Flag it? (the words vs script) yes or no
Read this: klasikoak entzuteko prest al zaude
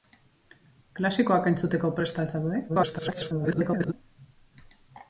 yes